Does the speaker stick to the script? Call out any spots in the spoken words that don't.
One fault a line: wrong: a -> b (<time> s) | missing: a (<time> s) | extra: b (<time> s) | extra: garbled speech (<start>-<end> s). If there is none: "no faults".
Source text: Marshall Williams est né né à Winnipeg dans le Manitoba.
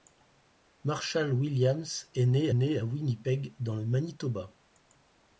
no faults